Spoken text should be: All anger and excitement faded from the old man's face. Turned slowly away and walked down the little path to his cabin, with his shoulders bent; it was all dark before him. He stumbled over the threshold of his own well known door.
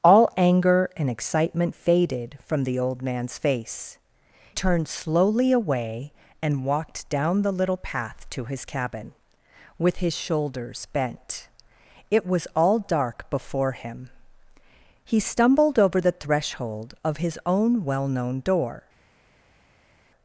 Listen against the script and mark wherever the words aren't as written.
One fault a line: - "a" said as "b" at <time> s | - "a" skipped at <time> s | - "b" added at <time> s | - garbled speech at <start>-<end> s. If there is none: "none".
none